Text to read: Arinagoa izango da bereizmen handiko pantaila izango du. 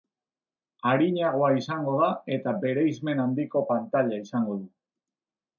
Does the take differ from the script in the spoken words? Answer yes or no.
yes